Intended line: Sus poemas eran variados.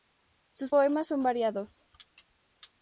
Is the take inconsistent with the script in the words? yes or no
yes